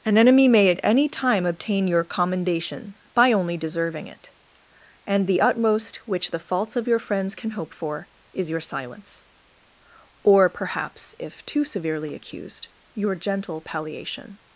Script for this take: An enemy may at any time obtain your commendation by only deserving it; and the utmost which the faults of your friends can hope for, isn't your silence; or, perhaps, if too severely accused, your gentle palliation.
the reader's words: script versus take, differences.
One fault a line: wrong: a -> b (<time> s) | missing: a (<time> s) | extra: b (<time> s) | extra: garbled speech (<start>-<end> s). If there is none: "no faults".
wrong: isn't -> is (8.3 s)